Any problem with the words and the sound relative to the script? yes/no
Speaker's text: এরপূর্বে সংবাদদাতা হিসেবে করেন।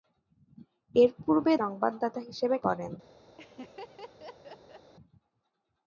yes